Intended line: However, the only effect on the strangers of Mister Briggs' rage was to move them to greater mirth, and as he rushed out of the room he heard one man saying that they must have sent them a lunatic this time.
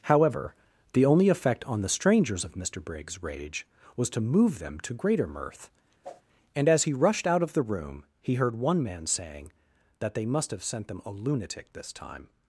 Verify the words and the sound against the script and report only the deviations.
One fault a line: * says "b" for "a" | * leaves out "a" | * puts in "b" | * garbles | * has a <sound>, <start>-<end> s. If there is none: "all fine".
* has a whoosh, 6.0-6.2 s